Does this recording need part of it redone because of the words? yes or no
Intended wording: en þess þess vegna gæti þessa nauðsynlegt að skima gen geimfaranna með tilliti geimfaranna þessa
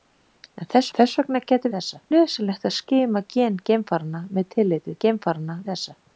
no